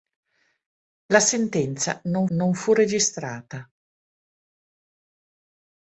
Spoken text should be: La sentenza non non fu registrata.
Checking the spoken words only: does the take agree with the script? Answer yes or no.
yes